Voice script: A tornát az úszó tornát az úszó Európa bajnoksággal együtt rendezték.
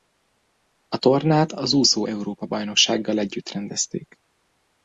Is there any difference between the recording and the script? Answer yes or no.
yes